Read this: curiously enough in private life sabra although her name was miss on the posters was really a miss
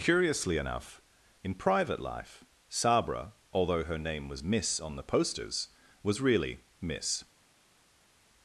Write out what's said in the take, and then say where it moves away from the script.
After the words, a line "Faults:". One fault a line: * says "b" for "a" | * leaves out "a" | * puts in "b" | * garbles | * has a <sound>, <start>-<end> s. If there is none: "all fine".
curiously enough in private life sabra although her name was miss on the posters was really miss
Faults:
* leaves out "a"